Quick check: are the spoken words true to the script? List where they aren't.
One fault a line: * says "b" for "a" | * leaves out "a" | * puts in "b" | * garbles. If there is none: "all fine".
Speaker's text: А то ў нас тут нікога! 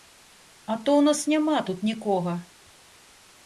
* puts in "няма"